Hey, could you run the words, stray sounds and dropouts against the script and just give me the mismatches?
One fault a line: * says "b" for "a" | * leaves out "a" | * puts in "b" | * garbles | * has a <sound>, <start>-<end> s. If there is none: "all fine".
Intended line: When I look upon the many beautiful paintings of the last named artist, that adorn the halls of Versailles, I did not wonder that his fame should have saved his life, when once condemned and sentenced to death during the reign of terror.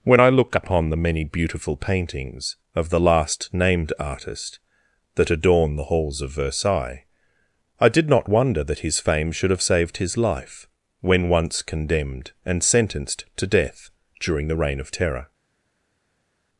all fine